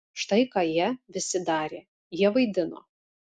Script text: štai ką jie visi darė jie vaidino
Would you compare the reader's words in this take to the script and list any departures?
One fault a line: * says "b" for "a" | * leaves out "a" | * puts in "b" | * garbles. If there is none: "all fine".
all fine